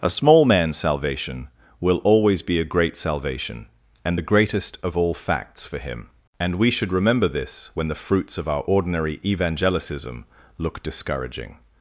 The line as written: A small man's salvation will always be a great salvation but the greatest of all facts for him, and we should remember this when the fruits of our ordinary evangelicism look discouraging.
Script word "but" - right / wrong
wrong